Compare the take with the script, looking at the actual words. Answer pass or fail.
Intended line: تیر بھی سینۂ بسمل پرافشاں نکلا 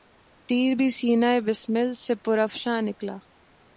fail